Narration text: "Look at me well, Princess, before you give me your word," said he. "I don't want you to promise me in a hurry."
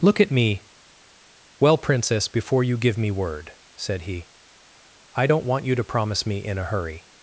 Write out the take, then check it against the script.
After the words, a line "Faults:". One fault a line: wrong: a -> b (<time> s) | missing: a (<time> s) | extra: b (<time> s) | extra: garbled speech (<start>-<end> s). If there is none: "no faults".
"Look at me well, Princess, before you give me word," said he. "I don't want you to promise me in a hurry."
Faults:
missing: your (3.1 s)